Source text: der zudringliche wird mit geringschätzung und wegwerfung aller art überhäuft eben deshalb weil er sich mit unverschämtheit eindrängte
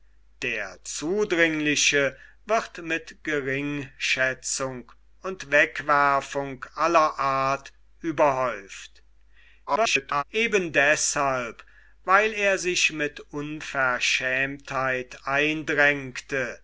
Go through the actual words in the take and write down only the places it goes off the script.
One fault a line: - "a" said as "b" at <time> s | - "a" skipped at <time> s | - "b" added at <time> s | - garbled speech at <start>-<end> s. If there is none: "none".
- garbled speech at 9.7-10.2 s